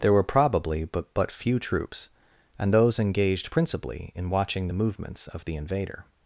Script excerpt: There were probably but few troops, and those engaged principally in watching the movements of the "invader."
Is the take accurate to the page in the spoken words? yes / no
no